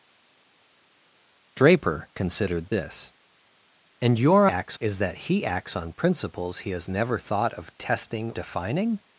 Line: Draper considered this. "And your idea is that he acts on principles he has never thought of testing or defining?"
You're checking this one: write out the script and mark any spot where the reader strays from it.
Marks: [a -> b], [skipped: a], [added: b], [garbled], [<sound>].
Draper considered this. "And your [idea -> acts] is that he acts on principles he has never thought of testing [skipped: or] defining?"